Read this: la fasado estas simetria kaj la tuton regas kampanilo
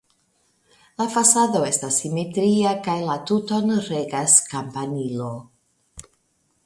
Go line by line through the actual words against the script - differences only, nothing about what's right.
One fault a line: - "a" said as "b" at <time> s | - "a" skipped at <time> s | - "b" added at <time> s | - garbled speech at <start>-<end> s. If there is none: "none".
none